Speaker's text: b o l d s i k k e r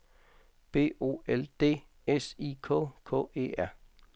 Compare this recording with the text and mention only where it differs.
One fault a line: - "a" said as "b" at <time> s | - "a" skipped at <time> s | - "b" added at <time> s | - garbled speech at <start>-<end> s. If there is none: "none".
none